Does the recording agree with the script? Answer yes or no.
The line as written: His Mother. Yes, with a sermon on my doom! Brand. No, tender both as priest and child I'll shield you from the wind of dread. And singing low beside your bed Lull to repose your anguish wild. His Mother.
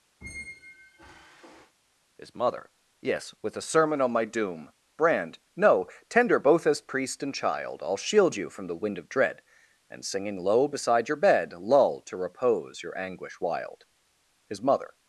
yes